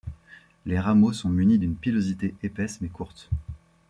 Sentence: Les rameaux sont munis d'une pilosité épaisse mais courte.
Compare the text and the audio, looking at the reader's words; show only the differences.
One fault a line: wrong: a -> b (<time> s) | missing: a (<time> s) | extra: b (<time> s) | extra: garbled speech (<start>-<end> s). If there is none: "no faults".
no faults